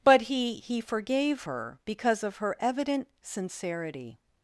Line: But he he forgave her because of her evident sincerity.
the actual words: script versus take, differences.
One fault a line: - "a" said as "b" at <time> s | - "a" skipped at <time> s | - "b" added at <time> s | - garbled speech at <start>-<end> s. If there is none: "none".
none